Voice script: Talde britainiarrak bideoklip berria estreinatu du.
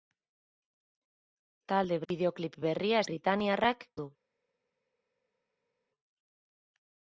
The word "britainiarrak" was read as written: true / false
false